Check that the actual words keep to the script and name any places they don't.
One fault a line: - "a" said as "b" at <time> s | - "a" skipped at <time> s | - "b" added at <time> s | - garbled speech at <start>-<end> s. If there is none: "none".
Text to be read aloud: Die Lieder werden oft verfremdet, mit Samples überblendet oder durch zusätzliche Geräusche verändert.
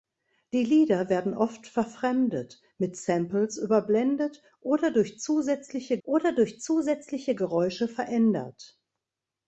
- "oder durch zusätzliche" added at 6.0 s